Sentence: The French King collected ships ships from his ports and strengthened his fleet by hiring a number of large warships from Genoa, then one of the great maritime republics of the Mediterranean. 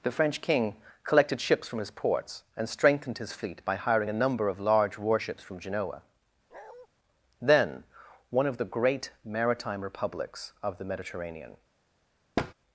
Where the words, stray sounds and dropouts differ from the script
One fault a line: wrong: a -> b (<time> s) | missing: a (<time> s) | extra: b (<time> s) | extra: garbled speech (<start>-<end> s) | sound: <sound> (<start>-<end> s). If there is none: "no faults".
missing: ships (1.7 s)
sound: bark (6.5-6.9 s)
sound: thud (12.4-12.5 s)